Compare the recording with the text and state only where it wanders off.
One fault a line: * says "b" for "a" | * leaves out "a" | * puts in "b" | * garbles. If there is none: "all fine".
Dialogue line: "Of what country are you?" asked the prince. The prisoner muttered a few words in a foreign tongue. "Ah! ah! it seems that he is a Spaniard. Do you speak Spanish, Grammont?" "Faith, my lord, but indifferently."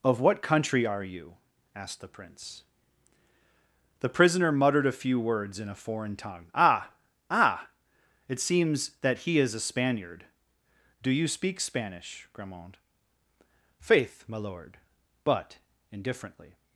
all fine